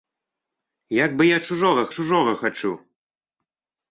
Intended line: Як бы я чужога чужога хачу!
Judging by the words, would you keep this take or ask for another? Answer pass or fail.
pass